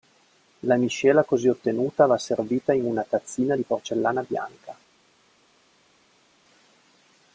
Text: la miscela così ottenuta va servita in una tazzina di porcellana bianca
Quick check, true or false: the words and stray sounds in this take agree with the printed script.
true